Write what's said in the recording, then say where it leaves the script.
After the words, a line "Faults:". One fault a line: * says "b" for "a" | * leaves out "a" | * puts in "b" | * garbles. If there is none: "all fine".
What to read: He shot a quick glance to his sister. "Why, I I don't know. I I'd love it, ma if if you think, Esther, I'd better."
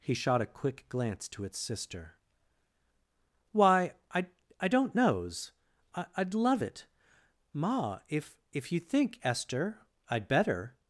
He shot a quick glance to its sister. "Why, I I don't knows. I I'd love it, ma if if you think, Esther, I'd better."
Faults:
* says "its" for "his"
* says "knows" for "know"